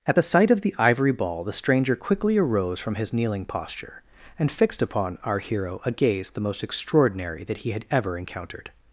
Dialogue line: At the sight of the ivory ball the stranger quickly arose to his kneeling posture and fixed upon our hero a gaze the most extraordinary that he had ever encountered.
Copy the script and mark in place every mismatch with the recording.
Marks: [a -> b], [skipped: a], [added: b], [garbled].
At the sight of the ivory ball the stranger quickly arose [to -> from] his kneeling posture and fixed upon our hero a gaze the most extraordinary that he had ever encountered.